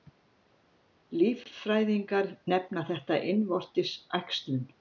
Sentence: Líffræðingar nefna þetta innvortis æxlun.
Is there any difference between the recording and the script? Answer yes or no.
no